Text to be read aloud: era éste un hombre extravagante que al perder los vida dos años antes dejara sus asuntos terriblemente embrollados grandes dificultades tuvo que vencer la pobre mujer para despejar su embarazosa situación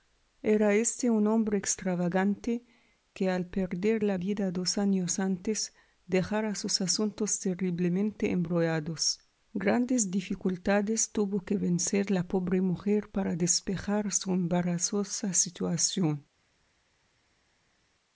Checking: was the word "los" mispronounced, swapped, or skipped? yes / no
yes